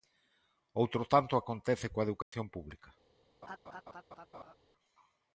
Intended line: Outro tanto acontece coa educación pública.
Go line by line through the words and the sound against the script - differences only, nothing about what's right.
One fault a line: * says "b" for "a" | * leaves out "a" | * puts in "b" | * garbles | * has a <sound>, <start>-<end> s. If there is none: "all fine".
* has a dropout, 2.2-2.3 s
* has a laugh, 3.4-4.5 s